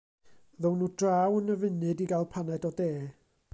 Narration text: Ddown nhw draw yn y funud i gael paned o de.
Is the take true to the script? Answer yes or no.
yes